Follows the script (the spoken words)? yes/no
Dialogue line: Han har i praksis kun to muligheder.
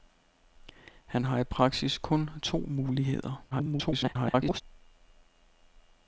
no